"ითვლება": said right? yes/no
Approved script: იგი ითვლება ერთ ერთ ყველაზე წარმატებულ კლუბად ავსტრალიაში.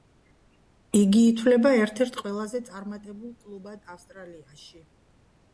yes